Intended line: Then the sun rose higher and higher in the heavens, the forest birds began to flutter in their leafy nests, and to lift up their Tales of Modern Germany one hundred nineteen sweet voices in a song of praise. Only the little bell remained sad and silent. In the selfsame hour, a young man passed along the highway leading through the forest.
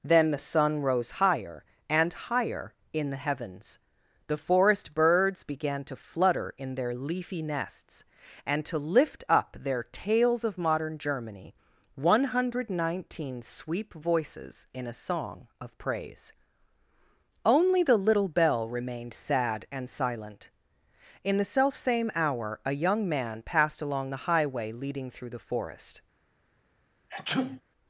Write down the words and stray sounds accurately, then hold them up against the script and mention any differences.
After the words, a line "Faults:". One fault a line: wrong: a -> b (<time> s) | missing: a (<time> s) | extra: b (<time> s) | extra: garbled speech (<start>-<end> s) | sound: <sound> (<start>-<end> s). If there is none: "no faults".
Then the sun rose higher and higher in the heavens, the forest birds began to flutter in their leafy nests, and to lift up their Tales of Modern Germany one hundred nineteen sweep voices in a song of praise. Only the little bell remained sad and silent. In the selfsame hour, a young man passed along the highway leading through the forest.
Faults:
wrong: sweet -> sweep (13.4 s)
sound: sneeze (27.1-27.6 s)